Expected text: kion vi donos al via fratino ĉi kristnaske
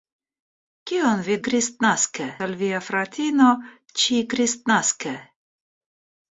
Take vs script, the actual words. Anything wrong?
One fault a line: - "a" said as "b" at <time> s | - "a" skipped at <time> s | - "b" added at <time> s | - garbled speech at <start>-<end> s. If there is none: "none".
- "donos" said as "kristnaske" at 1.5 s